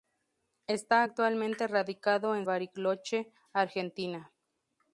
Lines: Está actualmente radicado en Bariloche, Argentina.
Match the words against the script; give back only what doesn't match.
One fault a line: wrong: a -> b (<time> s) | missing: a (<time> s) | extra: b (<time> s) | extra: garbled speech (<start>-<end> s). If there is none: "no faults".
no faults